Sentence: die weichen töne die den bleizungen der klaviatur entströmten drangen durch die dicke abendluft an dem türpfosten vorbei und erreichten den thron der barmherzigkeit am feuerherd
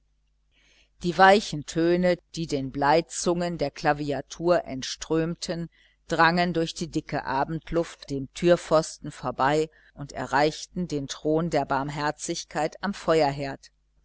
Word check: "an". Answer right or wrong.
wrong